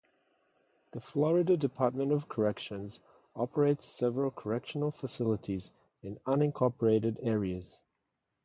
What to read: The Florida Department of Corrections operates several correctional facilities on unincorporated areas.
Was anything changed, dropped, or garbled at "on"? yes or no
yes